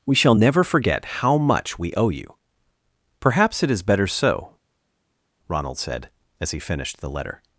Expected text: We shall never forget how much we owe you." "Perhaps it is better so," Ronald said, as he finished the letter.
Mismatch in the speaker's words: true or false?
false